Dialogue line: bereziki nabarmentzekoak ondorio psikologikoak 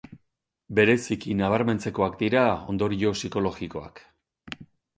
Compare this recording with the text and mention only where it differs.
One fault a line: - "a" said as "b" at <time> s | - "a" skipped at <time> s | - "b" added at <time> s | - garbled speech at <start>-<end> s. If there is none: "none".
- "dira" added at 2.2 s